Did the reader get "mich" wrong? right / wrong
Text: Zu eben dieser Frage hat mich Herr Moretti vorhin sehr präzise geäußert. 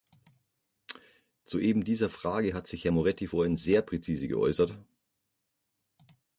wrong